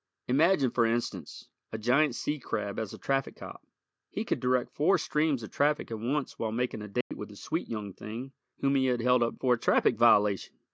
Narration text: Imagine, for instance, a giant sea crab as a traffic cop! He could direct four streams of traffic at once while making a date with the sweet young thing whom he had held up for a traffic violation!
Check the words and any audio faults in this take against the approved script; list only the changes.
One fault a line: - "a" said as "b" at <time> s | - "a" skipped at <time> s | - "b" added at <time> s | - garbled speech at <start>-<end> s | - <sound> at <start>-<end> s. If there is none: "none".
- dropout at 7.0-7.1 s